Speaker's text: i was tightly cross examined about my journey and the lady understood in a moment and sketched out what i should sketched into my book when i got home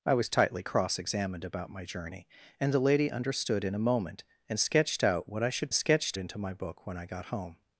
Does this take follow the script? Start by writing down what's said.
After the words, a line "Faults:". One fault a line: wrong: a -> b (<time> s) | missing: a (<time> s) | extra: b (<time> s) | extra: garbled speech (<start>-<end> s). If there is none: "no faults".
i was tightly cross examined about my journey and the lady understood in a moment and sketched out what i should sketched into my book when i got home
Faults:
no faults